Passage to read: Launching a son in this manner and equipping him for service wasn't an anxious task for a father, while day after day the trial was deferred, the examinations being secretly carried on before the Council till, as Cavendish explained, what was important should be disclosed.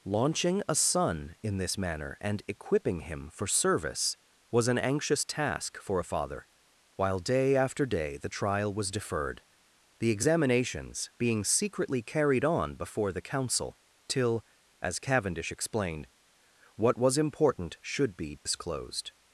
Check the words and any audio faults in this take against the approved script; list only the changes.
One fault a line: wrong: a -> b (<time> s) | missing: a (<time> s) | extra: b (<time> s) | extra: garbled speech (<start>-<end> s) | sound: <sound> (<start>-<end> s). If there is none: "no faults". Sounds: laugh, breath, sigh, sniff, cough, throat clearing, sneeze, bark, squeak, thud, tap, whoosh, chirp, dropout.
wrong: wasn't -> was (4.5 s)
sound: dropout (18.4-18.5 s)